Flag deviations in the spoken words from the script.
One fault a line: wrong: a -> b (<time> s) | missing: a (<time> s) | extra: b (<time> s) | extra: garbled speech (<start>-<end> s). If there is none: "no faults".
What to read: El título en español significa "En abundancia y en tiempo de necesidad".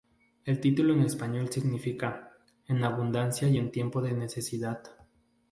no faults